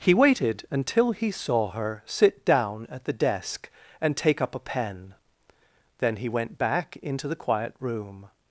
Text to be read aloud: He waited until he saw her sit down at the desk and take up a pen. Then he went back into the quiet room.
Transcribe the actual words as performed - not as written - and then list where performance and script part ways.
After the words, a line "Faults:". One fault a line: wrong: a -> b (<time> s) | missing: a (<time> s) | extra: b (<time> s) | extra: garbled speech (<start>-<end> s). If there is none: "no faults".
He waited until he saw her sit down at the desk and take up a pen. Then he went back into the quiet room.
Faults:
no faults